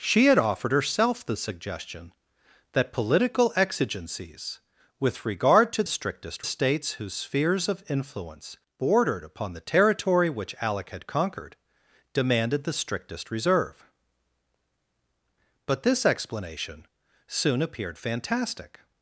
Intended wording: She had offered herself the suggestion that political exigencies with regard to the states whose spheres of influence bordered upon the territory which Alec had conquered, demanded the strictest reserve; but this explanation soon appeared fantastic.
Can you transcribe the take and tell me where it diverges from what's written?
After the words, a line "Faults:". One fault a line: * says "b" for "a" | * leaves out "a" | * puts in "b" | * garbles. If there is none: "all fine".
She had offered herself the suggestion that political exigencies with regard to strictest states whose spheres of influence bordered upon the territory which Alec had conquered, demanded the strictest reserve; but this explanation soon appeared fantastic.
Faults:
* says "strictest" for "the"